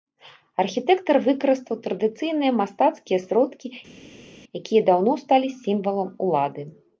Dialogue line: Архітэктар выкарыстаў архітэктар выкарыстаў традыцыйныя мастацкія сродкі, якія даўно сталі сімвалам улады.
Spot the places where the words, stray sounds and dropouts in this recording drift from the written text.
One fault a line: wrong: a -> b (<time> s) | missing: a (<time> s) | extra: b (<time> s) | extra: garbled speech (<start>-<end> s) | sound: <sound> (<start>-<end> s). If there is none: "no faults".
missing: архітэктар выкарыстаў (1.8 s)